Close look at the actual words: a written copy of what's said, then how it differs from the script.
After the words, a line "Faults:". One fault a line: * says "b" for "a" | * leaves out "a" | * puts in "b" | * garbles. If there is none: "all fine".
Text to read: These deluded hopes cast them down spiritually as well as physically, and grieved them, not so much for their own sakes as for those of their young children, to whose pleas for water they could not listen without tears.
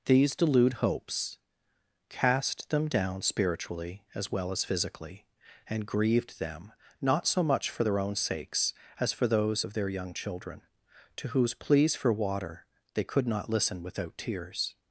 These delude hopes cast them down spiritually as well as physically, and grieved them, not so much for their own sakes as for those of their young children, to whose pleas for water they could not listen without tears.
Faults:
* says "delude" for "deluded"